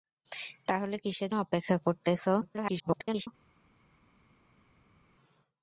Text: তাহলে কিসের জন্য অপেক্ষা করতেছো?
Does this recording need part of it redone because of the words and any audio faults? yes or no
yes